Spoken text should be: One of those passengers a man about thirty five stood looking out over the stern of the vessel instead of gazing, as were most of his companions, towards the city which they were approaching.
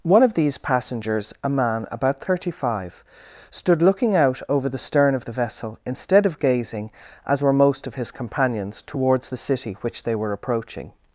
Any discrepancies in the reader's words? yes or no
yes